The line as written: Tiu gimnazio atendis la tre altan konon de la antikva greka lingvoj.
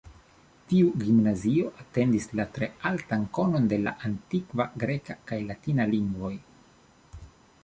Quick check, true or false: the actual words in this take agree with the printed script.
false